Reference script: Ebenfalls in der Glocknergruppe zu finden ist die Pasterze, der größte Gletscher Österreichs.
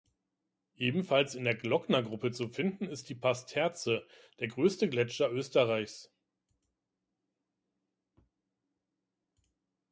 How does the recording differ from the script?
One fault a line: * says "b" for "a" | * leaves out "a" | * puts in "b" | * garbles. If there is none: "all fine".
all fine